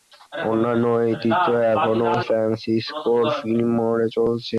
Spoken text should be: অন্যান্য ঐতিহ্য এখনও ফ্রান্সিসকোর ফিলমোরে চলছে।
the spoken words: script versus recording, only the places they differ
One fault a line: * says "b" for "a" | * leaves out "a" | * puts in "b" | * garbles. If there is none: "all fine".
all fine